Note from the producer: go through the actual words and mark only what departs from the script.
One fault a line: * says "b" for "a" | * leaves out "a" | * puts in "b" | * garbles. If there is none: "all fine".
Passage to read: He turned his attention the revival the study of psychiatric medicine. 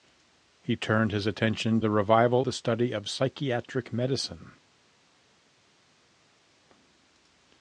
all fine